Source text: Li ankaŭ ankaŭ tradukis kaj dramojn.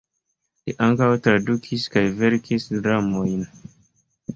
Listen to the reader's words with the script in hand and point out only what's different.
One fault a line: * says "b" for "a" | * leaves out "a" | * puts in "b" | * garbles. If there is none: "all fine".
* leaves out "ankaŭ"
* puts in "verkis"